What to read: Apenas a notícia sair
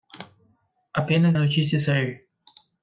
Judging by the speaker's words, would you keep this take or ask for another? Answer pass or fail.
pass